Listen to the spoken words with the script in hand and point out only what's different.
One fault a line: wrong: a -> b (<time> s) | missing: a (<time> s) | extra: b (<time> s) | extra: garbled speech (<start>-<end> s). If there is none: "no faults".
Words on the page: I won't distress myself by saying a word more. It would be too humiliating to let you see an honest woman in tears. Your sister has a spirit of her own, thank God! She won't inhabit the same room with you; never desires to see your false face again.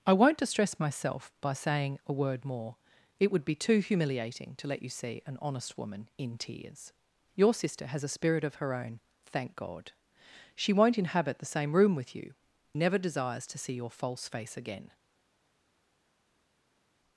no faults